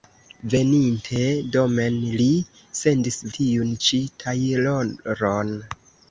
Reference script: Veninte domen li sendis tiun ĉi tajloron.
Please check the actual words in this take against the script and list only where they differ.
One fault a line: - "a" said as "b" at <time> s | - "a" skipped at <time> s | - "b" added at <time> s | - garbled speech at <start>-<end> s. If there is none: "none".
none